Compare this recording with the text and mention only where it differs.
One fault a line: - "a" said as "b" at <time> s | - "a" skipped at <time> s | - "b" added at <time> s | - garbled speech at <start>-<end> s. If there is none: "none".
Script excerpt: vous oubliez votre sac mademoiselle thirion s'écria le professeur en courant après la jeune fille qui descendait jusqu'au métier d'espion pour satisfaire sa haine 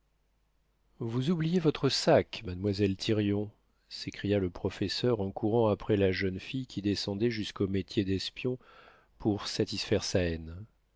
none